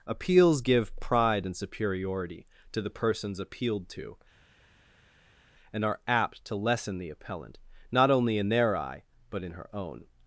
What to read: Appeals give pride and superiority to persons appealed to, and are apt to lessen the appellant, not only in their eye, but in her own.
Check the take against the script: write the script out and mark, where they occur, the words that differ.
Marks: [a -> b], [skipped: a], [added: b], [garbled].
Appeals give pride and superiority to [added: the] persons appealed to, and are apt to lessen the appellant, not only in their eye, but in her own.